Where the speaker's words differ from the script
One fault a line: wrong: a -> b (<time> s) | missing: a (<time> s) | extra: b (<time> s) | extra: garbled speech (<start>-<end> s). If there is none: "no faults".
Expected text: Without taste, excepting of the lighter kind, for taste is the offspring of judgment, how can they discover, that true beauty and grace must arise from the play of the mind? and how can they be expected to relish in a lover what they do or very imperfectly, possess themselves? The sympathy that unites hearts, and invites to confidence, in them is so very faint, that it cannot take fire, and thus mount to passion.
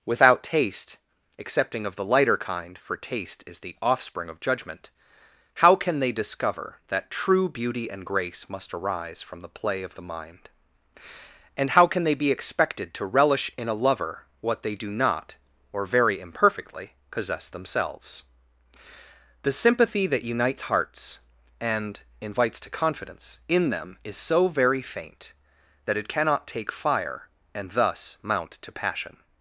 extra: not (14.9 s)